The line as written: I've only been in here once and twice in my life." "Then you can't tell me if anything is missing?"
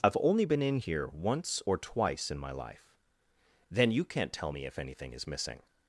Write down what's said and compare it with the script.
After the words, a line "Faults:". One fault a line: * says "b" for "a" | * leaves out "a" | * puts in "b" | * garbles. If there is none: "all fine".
I've only been in here once or twice in my life." "Then you can't tell me if anything is missing?"
Faults:
* says "or" for "and"